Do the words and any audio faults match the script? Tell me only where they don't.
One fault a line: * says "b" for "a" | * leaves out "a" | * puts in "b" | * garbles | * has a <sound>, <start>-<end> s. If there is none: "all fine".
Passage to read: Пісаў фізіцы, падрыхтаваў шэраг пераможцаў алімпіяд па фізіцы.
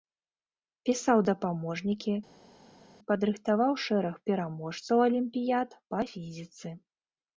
* says "дапаможнікі" for "фізіцы"